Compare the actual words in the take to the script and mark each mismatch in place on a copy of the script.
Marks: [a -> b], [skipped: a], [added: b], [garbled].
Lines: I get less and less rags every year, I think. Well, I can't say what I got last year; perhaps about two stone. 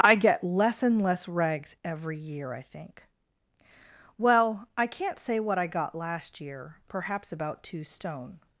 I get less and less rags every year, I think. Well, I can't say what I got last year; perhaps about two stone.